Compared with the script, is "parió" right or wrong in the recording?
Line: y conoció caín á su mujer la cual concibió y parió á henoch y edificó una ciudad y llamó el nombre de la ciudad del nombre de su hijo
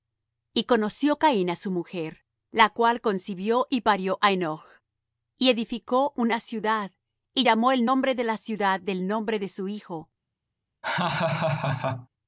right